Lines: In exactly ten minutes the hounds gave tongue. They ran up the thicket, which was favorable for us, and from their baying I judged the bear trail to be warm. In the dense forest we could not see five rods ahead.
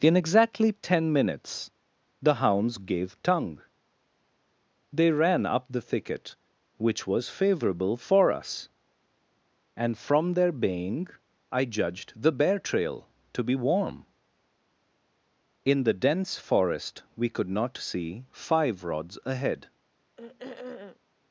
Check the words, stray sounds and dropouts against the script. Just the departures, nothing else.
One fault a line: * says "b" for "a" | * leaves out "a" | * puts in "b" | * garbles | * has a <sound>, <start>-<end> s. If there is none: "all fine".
* has a throat clearing, 20.2-21.0 s